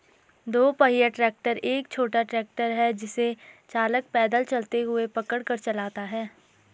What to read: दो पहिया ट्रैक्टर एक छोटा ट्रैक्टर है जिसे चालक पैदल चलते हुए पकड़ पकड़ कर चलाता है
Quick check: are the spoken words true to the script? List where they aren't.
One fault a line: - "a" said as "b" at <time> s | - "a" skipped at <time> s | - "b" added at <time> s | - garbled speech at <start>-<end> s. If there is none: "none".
- "पकड़" skipped at 5.4 s